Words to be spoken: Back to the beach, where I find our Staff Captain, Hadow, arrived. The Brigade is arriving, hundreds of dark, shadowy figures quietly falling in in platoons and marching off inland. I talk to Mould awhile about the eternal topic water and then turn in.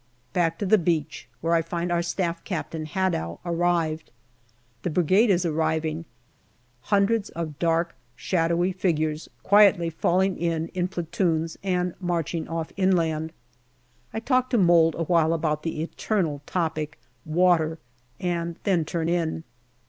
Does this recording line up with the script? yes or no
yes